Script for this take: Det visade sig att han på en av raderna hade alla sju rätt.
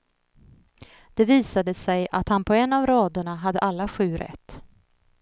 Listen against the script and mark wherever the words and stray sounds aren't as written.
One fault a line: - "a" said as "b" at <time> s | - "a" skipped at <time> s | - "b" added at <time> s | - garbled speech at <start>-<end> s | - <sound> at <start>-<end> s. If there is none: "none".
none